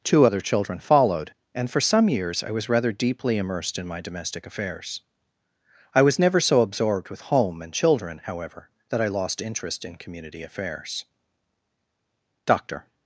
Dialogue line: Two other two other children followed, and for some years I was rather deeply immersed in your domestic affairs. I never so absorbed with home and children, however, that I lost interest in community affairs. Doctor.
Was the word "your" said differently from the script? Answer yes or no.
yes